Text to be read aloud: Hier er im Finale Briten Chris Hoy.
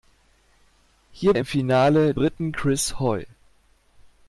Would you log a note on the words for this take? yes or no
no